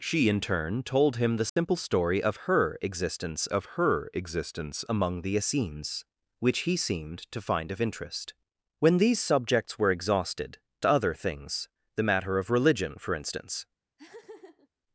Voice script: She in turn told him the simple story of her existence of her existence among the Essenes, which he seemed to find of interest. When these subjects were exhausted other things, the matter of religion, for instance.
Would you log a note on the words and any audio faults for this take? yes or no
yes